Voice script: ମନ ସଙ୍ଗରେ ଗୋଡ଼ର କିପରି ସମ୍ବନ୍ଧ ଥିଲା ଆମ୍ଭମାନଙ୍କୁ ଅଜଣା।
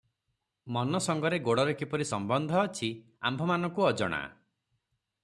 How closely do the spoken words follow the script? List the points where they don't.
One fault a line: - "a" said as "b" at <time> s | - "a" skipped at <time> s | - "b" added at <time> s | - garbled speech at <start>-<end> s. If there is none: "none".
- "ଥିଲା" said as "ଅଛି" at 2.6 s